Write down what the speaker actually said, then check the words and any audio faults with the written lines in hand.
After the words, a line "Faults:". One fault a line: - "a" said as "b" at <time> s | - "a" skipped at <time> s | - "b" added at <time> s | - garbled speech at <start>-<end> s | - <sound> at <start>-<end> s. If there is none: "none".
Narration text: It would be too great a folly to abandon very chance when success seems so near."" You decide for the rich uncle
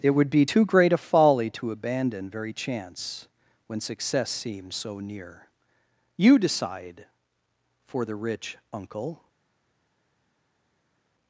It would be too great a folly to abandon very chance when success seems so near."" You decide for the rich uncle
Faults:
none